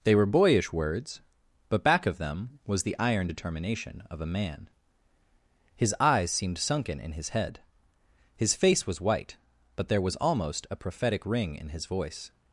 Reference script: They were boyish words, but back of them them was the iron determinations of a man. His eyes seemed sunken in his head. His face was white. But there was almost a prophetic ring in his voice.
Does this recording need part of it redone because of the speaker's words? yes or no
yes